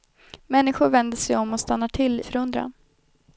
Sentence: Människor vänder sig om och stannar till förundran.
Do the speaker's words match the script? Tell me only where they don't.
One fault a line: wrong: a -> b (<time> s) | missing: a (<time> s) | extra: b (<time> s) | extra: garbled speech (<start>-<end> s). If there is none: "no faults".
no faults